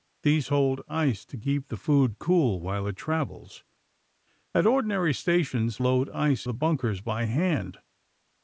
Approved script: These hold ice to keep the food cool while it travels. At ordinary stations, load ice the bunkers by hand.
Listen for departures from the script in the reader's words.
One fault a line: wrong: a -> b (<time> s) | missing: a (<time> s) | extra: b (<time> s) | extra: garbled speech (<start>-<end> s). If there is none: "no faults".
no faults